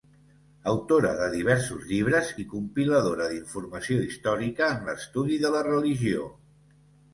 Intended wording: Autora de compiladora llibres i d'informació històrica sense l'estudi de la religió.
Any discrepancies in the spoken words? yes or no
yes